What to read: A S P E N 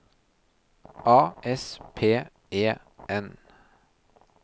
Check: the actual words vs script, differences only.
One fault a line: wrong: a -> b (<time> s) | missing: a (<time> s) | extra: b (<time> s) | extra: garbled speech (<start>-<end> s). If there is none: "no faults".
no faults